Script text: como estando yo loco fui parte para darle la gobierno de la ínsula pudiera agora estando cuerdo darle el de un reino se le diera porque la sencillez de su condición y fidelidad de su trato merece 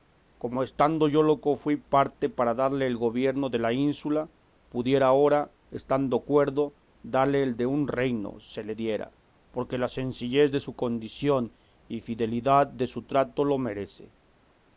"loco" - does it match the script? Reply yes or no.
yes